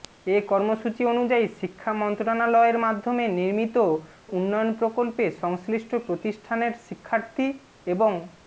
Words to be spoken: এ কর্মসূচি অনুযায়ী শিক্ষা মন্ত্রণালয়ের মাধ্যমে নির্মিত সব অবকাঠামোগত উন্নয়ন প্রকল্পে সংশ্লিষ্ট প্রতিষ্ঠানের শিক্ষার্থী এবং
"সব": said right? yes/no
no